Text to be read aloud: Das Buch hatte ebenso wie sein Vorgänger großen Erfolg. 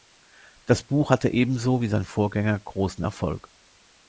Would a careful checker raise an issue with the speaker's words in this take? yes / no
no